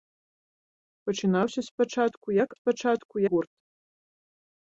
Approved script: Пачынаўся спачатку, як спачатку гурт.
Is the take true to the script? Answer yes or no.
yes